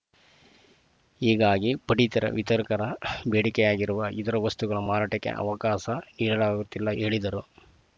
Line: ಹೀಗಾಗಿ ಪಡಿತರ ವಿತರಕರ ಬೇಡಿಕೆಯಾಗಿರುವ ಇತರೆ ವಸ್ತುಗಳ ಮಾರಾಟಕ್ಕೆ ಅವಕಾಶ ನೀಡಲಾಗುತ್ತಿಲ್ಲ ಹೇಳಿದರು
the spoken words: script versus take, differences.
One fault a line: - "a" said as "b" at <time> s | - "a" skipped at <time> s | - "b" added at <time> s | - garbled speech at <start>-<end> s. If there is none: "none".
none